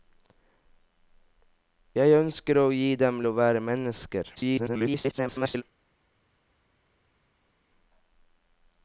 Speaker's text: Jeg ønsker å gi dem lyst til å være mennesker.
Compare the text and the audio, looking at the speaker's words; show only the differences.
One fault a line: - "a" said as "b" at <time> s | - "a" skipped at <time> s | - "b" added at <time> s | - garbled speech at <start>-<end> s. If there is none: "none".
- "lyst til" skipped at 3.2 s
- garbled speech at 4.4-5.6 s